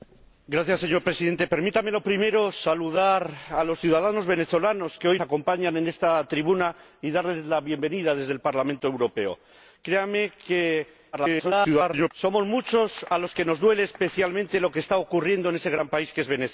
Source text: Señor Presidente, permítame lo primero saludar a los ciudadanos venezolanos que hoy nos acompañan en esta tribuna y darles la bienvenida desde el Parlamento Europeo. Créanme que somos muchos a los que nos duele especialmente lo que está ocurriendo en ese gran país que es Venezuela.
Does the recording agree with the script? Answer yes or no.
no